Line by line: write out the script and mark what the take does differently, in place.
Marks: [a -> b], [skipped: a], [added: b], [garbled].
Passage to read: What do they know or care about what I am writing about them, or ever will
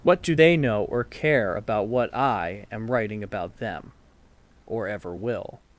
What do they know or care about what I am writing about them, or ever will